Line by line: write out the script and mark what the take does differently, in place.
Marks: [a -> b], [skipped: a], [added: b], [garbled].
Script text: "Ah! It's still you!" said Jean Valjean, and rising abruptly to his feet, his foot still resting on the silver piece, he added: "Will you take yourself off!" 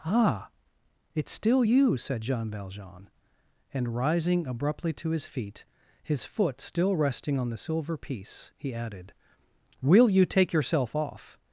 "Ah! It's still you!" said Jean Valjean, and rising abruptly to his feet, his foot still resting on the silver piece, he added: "Will you take yourself off!"